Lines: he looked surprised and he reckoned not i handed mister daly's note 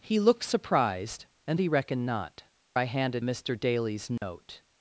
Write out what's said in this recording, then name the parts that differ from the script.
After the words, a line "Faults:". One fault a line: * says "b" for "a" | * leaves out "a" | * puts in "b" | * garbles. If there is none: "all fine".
he looked surprised and he reckoned not i handed mister daly's note
Faults:
all fine